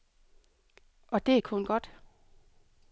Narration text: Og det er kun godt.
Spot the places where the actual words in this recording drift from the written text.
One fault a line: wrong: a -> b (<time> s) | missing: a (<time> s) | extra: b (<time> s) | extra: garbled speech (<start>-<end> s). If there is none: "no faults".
no faults